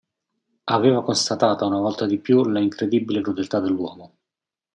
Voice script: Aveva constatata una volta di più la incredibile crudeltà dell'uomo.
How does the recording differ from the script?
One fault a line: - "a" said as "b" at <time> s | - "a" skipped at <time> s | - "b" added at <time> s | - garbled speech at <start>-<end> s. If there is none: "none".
none